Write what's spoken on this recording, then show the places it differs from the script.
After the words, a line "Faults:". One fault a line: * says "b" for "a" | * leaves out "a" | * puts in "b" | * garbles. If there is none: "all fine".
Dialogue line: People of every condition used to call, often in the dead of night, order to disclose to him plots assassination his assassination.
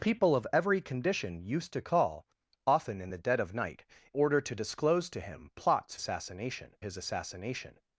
People of every condition used to call, often in the dead of night, order to disclose to him plots assassination his assassination.
Faults:
all fine